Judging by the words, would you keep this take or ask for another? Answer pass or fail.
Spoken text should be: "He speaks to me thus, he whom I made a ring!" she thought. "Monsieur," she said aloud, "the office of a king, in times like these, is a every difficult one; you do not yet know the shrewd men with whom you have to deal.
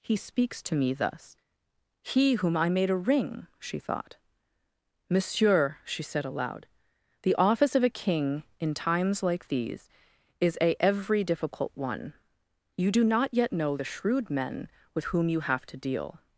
pass